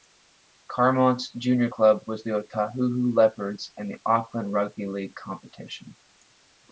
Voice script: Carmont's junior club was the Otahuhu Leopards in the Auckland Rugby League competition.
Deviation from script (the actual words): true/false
false